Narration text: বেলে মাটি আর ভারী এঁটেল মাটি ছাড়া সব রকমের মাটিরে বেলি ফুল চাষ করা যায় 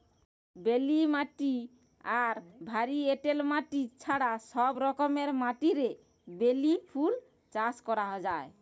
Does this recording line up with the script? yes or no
yes